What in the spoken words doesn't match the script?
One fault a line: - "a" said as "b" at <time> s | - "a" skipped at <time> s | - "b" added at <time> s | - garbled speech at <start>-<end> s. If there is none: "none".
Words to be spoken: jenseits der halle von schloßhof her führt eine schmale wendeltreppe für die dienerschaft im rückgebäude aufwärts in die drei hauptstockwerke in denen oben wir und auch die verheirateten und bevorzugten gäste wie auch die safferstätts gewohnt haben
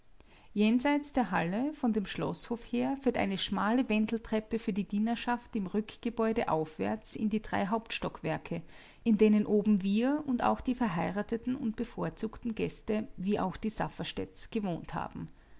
- "dem" added at 1.9 s